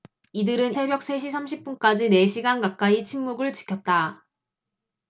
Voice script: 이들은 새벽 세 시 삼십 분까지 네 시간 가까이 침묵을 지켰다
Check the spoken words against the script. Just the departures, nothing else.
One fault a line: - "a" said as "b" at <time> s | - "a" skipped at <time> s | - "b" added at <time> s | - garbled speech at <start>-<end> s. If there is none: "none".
none